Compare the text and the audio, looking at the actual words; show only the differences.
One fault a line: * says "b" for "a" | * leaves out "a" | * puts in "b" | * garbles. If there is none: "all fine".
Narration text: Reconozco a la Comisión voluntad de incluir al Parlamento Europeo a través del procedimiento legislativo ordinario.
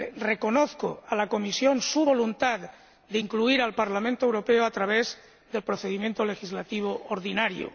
* puts in "su"